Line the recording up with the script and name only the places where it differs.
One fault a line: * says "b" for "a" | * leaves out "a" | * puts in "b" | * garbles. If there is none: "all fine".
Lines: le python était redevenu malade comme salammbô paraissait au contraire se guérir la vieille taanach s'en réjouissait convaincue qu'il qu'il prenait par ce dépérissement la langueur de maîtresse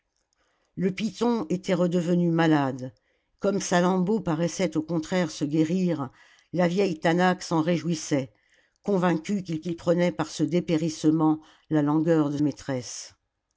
all fine